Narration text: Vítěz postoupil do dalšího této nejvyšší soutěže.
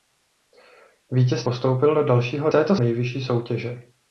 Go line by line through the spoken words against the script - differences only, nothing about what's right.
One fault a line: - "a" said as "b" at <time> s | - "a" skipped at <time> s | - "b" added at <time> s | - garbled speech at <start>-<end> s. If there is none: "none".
none